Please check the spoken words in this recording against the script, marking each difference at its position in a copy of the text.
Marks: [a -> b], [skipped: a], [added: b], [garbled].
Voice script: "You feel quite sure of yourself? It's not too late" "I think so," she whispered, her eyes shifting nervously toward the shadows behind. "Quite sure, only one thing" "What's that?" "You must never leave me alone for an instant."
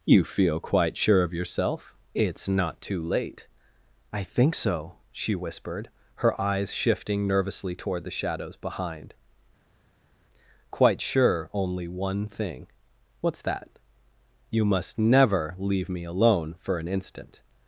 "You feel quite sure of yourself? It's not too late" "I think so," she whispered, her eyes shifting nervously toward the shadows behind. "Quite sure, only one thing" "What's that?" "You must never leave me alone for an instant."